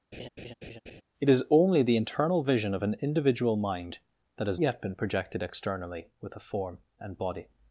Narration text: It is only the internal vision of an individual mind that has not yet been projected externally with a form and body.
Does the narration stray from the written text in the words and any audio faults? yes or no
yes